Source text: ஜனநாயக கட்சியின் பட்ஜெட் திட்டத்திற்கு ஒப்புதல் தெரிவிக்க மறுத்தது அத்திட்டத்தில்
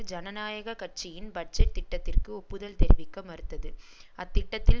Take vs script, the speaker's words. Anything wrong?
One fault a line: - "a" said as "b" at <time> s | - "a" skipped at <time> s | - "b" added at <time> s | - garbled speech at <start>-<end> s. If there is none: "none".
none